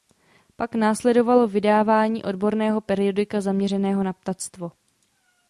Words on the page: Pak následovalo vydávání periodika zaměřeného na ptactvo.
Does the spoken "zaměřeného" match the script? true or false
true